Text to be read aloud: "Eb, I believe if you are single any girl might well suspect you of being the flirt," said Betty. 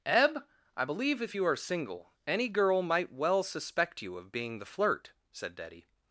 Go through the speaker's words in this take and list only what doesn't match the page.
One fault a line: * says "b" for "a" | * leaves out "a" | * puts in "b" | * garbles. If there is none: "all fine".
all fine